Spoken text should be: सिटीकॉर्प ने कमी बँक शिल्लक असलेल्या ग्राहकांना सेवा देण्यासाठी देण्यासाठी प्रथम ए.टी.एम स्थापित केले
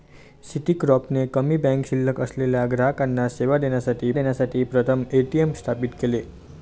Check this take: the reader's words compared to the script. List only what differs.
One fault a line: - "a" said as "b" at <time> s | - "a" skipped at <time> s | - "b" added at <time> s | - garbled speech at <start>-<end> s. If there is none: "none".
none